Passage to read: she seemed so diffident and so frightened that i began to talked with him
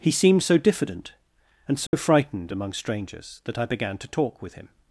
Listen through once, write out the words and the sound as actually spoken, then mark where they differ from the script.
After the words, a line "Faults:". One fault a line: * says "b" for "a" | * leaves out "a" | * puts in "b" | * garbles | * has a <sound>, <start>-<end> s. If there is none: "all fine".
he seemed so diffident and so frightened among strangers that i began to talk with him
Faults:
* says "he" for "she"
* has a dropout, 1.9-1.9 s
* puts in "among strangers"
* says "talk" for "talked"